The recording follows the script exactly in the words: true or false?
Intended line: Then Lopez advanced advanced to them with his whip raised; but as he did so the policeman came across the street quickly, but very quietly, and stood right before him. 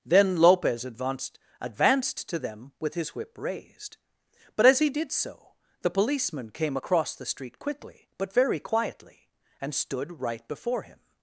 true